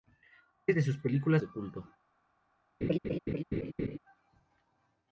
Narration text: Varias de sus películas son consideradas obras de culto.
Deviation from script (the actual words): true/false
true